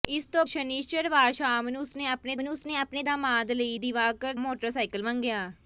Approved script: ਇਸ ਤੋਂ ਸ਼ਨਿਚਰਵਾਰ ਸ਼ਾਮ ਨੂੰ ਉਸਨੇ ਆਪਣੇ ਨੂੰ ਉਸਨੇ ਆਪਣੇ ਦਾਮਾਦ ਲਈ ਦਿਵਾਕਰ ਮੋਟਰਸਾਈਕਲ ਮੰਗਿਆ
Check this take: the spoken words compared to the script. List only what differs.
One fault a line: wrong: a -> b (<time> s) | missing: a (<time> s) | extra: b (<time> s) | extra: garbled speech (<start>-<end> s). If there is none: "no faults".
no faults